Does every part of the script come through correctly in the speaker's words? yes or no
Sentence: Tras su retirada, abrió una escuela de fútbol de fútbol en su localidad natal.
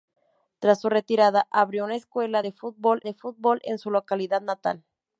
yes